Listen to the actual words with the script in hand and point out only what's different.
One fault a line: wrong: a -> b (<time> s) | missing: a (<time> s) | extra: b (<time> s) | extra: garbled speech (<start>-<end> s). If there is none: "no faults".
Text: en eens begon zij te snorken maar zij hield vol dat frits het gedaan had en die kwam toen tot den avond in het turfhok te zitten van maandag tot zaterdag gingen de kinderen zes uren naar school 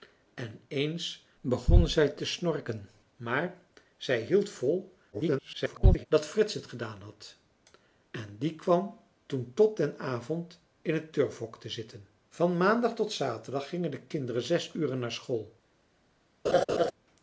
extra: garbled speech (5.1-6.1 s)